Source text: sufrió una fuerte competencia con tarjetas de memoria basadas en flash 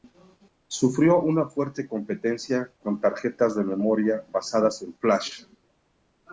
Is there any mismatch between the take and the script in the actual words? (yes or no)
no